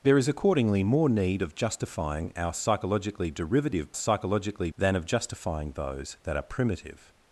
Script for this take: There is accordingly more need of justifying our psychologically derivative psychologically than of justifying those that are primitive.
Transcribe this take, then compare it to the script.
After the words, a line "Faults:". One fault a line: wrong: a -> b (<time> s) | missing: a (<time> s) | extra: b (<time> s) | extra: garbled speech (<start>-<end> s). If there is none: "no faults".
There is accordingly more need of justifying our psychologically derivative psychologically than of justifying those that are primitive.
Faults:
no faults